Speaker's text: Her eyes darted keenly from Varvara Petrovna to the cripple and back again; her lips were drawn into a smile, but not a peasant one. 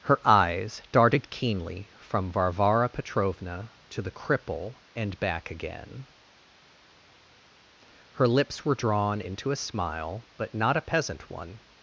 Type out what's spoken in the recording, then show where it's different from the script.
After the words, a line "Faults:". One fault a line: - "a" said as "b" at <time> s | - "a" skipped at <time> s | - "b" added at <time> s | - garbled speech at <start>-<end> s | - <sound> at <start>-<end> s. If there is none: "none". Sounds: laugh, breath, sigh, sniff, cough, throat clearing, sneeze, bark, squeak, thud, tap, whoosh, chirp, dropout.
Her eyes darted keenly from Varvara Petrovna to the cripple and back again; her lips were drawn into a smile, but not a peasant one.
Faults:
none